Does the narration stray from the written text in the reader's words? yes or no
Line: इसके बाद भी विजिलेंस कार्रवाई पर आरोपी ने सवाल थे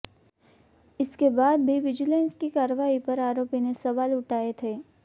yes